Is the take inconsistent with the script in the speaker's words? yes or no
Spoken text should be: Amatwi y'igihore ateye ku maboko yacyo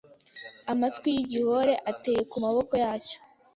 no